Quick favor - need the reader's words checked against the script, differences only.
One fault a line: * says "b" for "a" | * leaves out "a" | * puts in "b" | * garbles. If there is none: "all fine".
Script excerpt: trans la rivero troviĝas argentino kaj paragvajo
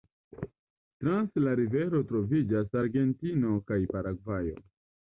all fine